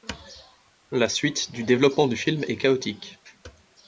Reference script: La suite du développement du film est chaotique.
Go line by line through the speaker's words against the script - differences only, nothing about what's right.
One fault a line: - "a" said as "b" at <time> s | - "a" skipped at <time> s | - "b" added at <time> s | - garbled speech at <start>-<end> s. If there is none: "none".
none